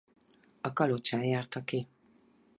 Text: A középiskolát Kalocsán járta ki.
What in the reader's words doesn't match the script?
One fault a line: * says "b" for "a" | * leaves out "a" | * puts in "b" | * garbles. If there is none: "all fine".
* leaves out "középiskolát"